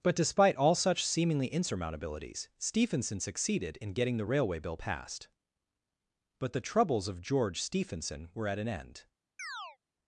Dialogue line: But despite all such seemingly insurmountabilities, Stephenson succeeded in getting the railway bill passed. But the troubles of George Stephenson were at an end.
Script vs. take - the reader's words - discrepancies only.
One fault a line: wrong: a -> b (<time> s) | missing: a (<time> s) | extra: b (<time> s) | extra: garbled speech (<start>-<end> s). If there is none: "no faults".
no faults